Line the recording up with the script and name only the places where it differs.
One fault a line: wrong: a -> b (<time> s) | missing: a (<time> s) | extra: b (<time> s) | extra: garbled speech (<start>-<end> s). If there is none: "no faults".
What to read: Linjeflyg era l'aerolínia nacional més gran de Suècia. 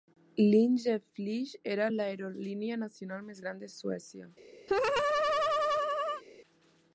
no faults